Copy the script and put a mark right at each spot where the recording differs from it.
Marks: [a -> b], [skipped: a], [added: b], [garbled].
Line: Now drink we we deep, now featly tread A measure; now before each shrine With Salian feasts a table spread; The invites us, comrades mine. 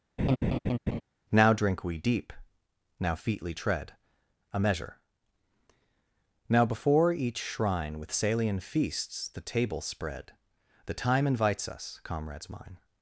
Now drink we [skipped: we] deep, now featly tread A measure; now before each shrine With Salian feasts [a -> the] table spread; The [added: time] invites us, comrades mine.